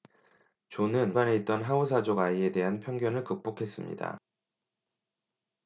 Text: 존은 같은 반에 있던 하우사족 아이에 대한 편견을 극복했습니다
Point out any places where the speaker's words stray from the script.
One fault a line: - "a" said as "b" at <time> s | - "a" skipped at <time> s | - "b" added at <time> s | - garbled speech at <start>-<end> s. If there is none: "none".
- "같은" skipped at 1.2 s